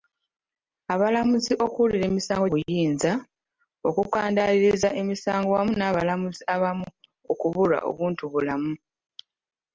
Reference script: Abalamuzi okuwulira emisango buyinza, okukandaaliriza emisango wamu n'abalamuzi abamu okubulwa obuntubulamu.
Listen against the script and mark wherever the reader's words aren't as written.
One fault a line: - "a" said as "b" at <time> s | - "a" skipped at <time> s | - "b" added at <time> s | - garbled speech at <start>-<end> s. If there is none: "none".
none